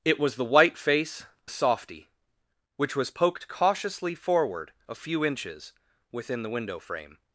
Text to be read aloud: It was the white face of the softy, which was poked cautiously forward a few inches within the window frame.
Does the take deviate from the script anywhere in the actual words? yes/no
yes